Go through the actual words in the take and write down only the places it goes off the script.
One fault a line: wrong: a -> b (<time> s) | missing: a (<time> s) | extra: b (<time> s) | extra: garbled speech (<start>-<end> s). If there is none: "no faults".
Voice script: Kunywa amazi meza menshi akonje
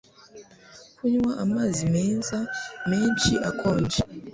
no faults